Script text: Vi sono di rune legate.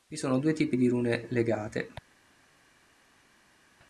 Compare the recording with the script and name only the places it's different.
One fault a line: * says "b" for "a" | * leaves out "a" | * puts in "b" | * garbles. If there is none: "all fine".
* puts in "due tipi"